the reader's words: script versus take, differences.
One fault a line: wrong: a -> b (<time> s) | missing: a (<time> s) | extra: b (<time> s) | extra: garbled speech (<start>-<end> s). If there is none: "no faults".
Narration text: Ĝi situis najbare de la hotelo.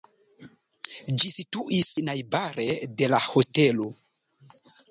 no faults